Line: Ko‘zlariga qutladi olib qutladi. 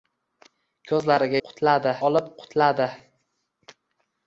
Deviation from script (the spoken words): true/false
false